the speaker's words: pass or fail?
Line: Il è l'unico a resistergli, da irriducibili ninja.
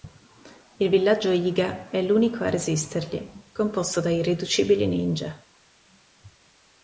fail